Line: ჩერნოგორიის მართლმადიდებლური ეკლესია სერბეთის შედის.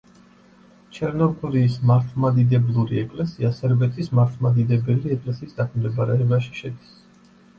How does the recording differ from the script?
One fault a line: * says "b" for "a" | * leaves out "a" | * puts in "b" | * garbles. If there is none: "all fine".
* puts in "მართლმადიდებელი ეკლესიის დაქვემდებარებაში"